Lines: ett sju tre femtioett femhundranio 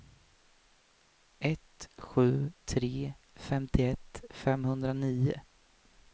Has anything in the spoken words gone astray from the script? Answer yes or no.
no